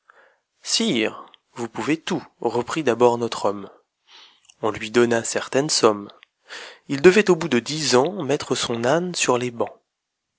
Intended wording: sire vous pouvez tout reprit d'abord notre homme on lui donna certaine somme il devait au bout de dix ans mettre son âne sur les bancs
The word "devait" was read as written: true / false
true